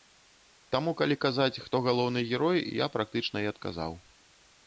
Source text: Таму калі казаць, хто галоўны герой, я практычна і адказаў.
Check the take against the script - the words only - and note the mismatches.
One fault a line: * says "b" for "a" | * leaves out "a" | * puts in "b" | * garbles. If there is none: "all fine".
all fine